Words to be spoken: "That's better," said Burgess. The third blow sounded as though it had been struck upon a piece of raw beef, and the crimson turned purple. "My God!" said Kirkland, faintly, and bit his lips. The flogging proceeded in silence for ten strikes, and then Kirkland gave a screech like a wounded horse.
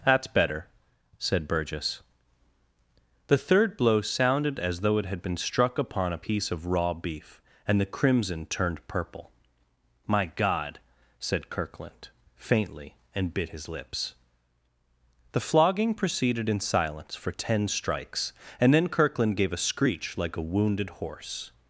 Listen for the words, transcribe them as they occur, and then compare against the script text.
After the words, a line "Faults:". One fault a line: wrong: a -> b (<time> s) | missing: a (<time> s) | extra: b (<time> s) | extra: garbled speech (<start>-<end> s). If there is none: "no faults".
"That's better," said Burgess. The third blow sounded as though it had been struck upon a piece of raw beef, and the crimson turned purple. "My God!" said Kirkland, faintly, and bit his lips. The flogging proceeded in silence for ten strikes, and then Kirkland gave a screech like a wounded horse.
Faults:
no faults